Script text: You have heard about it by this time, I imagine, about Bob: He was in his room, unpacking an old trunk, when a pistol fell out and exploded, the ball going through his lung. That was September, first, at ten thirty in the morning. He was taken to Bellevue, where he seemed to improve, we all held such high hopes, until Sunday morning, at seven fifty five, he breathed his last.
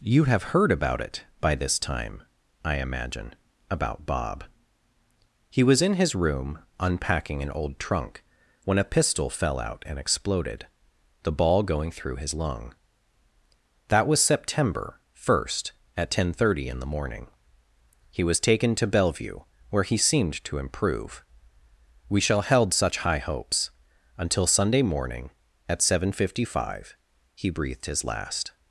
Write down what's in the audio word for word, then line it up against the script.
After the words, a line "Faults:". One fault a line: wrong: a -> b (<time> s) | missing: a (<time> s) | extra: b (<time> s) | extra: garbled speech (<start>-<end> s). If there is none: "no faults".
You have heard about it by this time, I imagine, about Bob: He was in his room, unpacking an old trunk, when a pistol fell out and exploded, the ball going through his lung. That was September, first, at ten thirty in the morning. He was taken to Bellevue, where he seemed to improve, we shall held such high hopes, until Sunday morning, at seven fifty five, he breathed his last.
Faults:
wrong: all -> shall (22.2 s)